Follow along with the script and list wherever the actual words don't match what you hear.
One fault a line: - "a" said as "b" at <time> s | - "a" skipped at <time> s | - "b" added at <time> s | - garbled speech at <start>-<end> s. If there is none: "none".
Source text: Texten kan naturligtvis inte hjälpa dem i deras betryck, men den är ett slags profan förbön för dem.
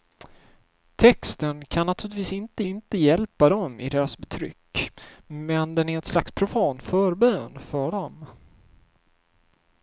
- "inte" added at 2.7 s